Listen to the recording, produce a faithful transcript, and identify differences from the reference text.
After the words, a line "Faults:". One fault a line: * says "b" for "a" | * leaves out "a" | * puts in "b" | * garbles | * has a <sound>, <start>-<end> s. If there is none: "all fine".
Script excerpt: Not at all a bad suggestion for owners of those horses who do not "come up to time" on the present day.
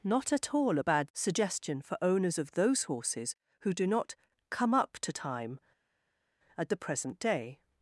Not at all a bad suggestion for owners of those horses who do not "come up to time" at the present day.
Faults:
* says "at" for "on"